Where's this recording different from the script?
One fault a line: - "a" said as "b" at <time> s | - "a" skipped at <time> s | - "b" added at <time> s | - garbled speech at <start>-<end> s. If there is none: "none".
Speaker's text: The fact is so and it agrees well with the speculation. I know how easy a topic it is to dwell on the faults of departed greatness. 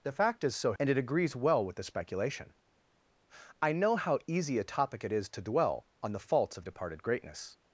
none